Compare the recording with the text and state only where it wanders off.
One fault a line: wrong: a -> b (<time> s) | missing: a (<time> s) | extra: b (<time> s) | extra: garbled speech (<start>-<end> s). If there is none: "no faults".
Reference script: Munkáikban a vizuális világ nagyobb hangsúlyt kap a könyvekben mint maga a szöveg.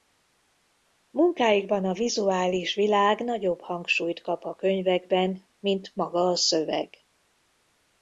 no faults